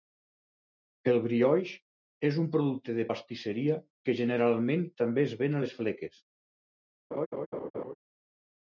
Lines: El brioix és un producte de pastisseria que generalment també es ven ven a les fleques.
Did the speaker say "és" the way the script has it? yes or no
yes